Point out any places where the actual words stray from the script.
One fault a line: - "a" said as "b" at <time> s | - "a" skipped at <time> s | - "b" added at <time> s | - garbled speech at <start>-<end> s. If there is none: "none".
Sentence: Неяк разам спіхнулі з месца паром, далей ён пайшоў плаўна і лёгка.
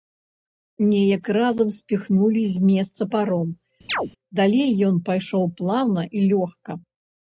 none